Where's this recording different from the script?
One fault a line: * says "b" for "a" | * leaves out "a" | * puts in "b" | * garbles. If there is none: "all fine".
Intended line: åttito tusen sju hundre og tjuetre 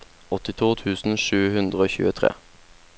all fine